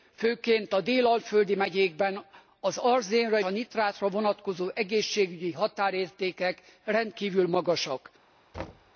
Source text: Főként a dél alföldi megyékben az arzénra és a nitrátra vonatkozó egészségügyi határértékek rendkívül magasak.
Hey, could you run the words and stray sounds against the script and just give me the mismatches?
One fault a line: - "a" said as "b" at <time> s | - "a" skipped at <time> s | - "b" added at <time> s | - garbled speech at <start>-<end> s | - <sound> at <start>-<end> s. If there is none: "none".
- "és" skipped at 3.4 s
- thud at 8.5-8.9 s